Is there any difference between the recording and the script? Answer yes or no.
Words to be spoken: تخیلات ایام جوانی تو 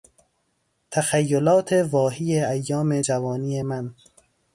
yes